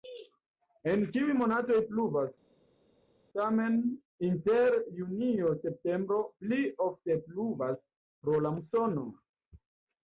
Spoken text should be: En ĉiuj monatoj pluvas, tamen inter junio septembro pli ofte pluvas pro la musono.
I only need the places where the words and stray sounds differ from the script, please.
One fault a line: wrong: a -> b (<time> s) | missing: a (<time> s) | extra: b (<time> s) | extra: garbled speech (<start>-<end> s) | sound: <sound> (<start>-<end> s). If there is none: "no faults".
no faults